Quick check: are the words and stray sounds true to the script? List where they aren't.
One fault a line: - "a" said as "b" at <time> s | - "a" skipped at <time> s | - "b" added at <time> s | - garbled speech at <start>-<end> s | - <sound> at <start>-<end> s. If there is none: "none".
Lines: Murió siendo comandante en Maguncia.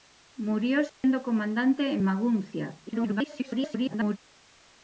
- dropout at 0.9-1.0 s
- garbled speech at 2.9-4.2 s